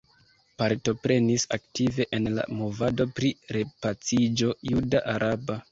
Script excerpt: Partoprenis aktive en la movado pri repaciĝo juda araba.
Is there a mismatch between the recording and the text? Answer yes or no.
no